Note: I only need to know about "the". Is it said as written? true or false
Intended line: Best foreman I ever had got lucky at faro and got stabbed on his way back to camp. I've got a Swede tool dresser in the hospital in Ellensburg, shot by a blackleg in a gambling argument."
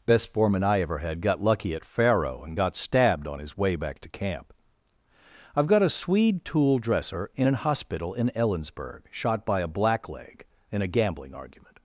false